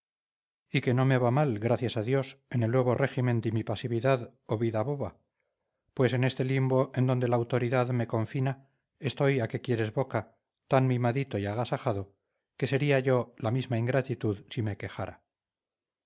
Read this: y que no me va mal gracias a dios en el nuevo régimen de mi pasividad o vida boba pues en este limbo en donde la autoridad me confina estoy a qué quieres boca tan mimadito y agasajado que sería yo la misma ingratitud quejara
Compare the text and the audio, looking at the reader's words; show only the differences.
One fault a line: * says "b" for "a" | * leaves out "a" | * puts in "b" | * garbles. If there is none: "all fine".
* puts in "si me"